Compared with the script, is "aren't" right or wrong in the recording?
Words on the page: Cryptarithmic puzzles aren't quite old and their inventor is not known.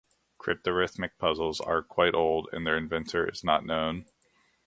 wrong